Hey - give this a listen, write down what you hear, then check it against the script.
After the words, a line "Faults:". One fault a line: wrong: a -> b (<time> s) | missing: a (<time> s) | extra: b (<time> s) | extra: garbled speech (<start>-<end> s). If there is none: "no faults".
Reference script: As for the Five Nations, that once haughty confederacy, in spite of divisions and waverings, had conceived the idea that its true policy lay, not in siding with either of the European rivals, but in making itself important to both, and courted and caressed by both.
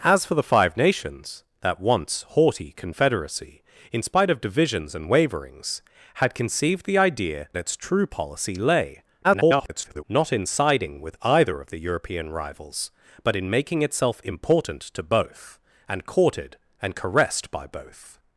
As for the Five Nations, that once haughty confederacy, in spite of divisions and waverings, had conceived the idea its true policy lay, [garbled] not in siding with either of the European rivals, but in making itself important to both, and courted and caressed by both.
Faults:
missing: that (7.5 s)
extra: garbled speech (9.2-10.0 s)